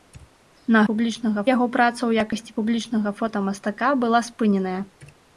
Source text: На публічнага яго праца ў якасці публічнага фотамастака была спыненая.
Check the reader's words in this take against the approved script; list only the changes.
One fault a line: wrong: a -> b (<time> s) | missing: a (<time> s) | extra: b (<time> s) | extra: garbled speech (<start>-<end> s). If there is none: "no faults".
no faults